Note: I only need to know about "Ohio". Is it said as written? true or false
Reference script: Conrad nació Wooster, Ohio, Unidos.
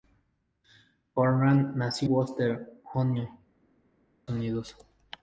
true